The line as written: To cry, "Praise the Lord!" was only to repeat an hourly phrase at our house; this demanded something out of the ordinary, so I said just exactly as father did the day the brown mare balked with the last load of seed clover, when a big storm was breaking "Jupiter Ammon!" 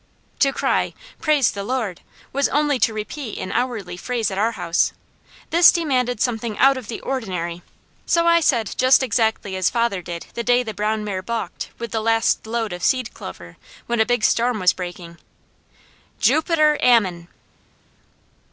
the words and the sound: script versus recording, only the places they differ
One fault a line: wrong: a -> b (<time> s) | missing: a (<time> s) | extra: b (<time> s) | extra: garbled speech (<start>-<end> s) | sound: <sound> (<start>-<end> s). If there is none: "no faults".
no faults